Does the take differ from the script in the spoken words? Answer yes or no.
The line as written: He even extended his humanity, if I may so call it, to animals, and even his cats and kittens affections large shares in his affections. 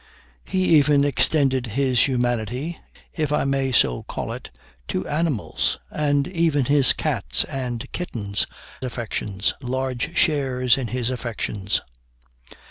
no